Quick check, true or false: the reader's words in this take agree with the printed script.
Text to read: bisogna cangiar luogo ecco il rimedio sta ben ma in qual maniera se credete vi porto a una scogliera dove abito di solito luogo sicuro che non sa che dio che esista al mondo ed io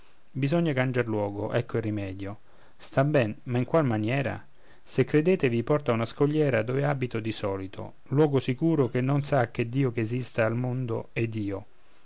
true